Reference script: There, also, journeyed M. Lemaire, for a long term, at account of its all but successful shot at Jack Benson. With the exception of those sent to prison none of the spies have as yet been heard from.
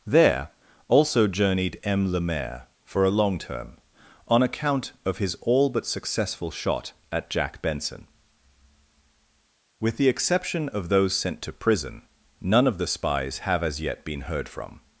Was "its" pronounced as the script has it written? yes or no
no